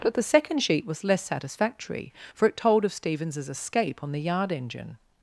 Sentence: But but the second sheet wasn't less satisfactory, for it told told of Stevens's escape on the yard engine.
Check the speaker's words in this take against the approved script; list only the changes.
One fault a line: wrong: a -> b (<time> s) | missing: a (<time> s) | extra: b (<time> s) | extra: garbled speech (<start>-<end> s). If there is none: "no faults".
missing: but (0.1 s)
wrong: wasn't -> was (0.9 s)
missing: told (2.8 s)